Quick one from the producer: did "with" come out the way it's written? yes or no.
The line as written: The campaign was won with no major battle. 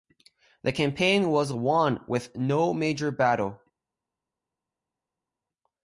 yes